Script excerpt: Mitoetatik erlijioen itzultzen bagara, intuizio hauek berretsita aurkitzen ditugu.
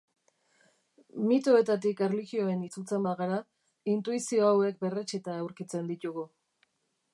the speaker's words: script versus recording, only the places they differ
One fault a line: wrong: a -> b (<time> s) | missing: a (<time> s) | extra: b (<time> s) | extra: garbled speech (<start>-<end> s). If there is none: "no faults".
no faults